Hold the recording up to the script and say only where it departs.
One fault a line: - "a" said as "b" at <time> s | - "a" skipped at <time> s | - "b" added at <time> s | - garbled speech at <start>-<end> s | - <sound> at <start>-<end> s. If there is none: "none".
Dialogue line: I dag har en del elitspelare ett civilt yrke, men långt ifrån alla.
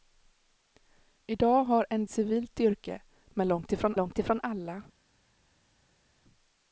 - "del elitspelare ett" skipped at 2.0 s
- "långt ifrån" added at 4.0 s